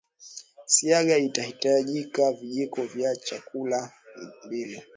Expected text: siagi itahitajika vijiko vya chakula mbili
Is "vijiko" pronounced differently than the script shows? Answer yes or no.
no